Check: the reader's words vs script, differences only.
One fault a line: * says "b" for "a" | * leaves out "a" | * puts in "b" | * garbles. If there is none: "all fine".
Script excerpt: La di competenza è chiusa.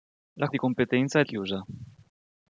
all fine